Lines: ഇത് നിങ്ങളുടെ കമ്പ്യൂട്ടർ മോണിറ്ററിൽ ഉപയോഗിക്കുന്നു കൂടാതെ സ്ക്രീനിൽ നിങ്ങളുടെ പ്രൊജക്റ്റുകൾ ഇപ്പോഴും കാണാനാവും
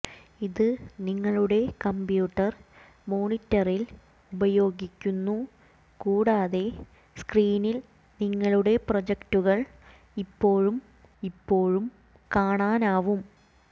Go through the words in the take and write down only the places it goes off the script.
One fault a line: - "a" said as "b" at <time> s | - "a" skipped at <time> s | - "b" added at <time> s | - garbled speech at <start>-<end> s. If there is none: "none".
- "ഇപ്പോഴും" added at 11.2 s